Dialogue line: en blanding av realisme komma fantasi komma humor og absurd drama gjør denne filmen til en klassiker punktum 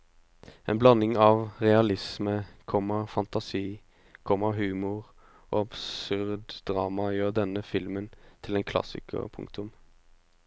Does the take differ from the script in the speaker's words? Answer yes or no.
no